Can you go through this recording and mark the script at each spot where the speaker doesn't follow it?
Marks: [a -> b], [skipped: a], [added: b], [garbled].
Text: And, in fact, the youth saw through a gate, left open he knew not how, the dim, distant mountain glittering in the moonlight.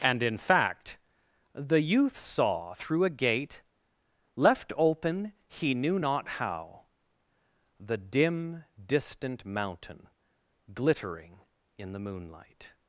And, in fact, the youth saw through a gate, left open he knew not how, the dim, distant mountain glittering in the moonlight.